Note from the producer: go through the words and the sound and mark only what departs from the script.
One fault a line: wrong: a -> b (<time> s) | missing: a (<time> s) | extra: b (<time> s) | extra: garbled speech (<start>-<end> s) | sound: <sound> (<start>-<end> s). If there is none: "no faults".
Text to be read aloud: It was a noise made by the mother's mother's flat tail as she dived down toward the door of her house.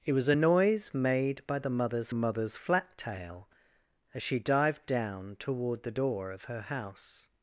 no faults